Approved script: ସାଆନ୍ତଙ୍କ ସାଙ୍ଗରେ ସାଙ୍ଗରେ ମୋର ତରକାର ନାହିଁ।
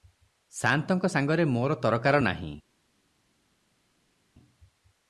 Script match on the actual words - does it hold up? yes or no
no